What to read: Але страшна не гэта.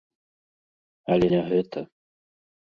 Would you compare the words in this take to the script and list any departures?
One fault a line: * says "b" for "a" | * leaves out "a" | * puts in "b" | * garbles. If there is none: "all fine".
* leaves out "страшна"